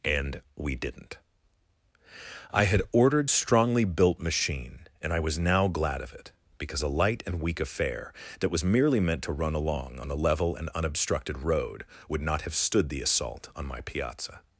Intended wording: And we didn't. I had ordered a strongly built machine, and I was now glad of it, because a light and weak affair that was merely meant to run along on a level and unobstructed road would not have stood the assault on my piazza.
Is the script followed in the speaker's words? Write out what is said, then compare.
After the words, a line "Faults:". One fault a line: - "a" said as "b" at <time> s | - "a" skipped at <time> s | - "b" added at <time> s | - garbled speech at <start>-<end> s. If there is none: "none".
And we didn't. I had ordered strongly built machine, and I was now glad of it, because a light and weak affair that was merely meant to run along on a level and unobstructed road would not have stood the assault on my piazza.
Faults:
- "a" skipped at 3.3 s